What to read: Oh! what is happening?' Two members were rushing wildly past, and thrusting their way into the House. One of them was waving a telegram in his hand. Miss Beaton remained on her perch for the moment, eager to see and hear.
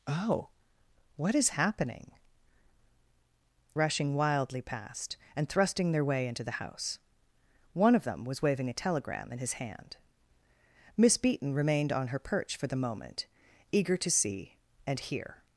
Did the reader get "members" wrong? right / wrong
wrong